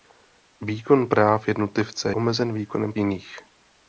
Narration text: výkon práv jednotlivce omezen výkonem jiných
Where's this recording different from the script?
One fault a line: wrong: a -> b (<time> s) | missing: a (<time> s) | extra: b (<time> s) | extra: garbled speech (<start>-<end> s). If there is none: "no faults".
no faults